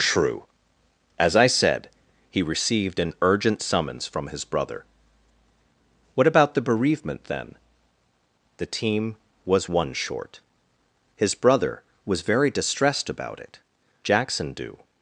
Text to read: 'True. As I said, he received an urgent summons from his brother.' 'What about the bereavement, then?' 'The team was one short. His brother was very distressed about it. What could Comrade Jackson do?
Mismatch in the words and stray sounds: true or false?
true